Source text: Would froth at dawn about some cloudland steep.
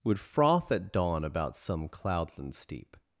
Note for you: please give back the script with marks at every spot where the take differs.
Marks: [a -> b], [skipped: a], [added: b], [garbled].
Would froth at dawn about some cloudland steep.